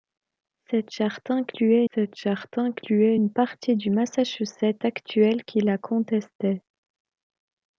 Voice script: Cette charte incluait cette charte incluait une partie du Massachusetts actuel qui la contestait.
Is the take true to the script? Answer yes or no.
yes